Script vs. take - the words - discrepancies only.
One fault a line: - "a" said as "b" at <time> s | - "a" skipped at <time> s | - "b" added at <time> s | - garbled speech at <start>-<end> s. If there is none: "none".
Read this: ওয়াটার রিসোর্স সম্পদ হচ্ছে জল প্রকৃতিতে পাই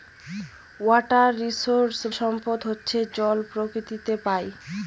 none